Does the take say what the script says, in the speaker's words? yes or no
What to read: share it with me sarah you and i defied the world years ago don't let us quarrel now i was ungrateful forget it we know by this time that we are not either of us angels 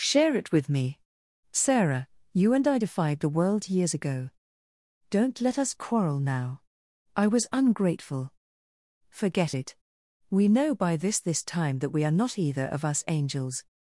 no